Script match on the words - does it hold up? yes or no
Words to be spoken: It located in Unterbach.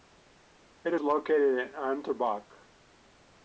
yes